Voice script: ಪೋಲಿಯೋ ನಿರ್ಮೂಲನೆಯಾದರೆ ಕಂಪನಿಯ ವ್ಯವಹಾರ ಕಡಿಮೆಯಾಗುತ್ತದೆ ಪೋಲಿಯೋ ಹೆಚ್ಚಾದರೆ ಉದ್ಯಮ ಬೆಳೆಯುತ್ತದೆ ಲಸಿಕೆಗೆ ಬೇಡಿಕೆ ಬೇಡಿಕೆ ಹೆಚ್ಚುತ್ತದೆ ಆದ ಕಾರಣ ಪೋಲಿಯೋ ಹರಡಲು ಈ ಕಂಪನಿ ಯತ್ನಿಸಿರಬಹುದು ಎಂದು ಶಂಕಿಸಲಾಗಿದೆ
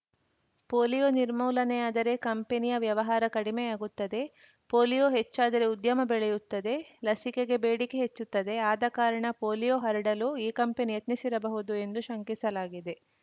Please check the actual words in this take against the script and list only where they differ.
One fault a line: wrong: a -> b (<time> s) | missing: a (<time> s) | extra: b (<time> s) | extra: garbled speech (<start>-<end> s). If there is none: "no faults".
missing: ಬೇಡಿಕೆ (8.0 s)